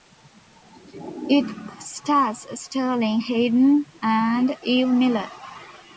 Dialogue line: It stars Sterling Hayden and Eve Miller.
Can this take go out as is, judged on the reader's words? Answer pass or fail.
pass